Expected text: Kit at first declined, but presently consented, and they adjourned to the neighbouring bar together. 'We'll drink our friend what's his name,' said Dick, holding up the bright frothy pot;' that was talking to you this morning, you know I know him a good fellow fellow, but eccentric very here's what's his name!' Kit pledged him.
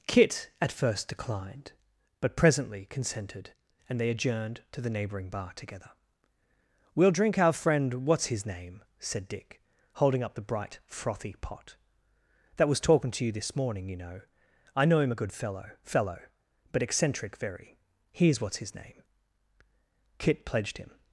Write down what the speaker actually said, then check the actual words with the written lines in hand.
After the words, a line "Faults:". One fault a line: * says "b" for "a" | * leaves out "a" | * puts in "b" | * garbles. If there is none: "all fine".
Kit at first declined, but presently consented, and they adjourned to the neighbouring bar together. 'We'll drink our friend what's his name,' said Dick, holding up the bright frothy pot;' that was talking to you this morning, you know I know him a good fellow fellow, but eccentric very here's what's his name!' Kit pledged him.
Faults:
all fine